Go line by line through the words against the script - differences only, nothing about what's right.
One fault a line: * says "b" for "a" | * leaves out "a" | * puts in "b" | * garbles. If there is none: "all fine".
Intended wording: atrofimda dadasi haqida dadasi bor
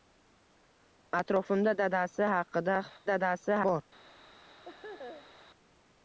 all fine